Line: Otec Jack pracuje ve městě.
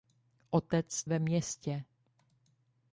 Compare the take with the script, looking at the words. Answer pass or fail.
fail